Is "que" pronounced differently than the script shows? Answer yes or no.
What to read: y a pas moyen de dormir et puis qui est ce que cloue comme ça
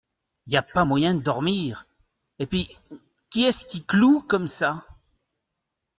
yes